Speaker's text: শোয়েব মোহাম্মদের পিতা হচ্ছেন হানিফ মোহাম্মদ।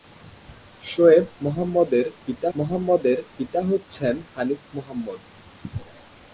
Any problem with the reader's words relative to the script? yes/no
yes